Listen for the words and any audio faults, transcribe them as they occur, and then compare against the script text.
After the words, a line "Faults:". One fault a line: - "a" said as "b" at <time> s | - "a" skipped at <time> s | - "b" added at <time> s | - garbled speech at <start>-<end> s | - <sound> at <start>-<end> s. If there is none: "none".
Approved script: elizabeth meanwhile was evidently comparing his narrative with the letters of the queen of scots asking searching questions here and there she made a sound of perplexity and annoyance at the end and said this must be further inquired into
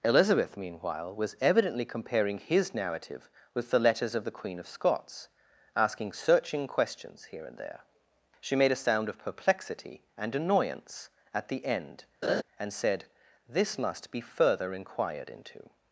elizabeth meanwhile was evidently comparing his narrative with the letters of the queen of scots asking searching questions here and there she made a sound of perplexity and annoyance at the end and said this must be further inquired into
Faults:
- laugh at 12.2-12.4 s